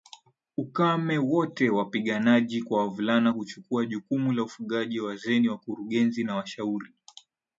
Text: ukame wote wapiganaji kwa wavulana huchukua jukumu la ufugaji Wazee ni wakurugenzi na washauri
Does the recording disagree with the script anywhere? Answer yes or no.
no